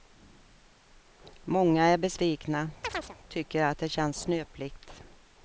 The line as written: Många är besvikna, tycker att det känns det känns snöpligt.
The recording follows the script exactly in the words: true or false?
false